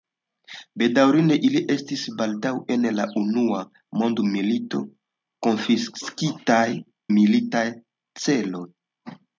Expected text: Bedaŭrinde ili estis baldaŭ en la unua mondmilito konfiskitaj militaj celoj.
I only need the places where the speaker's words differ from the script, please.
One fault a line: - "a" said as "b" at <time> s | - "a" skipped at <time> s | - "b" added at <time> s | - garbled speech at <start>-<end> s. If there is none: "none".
none